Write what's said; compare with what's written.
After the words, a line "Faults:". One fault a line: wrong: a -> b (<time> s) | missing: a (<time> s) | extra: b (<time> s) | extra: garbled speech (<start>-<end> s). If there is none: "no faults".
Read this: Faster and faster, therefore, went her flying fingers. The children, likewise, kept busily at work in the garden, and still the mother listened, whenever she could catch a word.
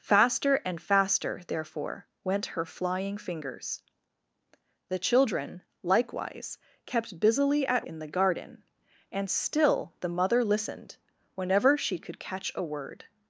Faster and faster, therefore, went her flying fingers. The children, likewise, kept busily at in the garden, and still the mother listened, whenever she could catch a word.
Faults:
missing: work (7.9 s)